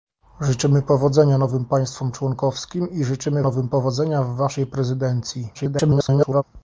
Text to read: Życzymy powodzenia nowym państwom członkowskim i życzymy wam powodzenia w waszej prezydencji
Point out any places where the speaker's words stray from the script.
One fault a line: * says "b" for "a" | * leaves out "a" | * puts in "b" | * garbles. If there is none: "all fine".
* says "nowym" for "wam"
* garbles